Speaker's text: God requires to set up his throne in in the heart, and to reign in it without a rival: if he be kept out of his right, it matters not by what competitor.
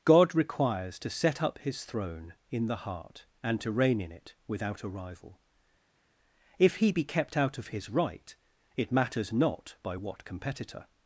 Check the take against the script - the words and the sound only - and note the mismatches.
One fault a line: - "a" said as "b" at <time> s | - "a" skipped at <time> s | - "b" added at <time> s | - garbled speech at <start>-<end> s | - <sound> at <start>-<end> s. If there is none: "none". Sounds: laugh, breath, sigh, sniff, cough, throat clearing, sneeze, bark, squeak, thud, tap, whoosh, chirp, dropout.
- "in" skipped at 2.6 s